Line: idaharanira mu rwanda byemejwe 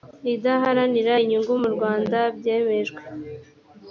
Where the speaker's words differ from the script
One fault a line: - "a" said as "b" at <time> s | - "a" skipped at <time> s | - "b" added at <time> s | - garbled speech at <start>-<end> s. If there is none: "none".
- "inyungu" added at 1.2 s